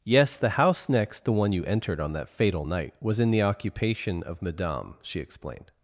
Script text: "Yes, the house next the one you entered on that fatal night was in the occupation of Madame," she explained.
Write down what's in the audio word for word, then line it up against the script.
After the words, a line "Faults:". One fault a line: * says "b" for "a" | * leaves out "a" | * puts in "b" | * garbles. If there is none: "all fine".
"Yes, the house next the one you entered on that fatal night was in the occupation of Madame," she explained.
Faults:
all fine